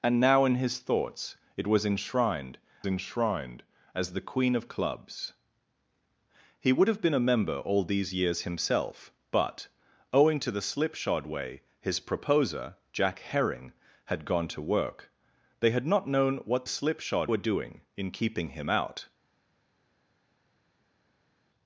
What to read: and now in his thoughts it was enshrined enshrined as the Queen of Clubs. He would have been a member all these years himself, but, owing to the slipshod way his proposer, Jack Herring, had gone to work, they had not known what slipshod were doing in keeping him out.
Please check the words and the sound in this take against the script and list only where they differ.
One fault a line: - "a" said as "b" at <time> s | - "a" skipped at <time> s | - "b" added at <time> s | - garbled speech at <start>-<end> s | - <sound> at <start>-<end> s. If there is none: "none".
none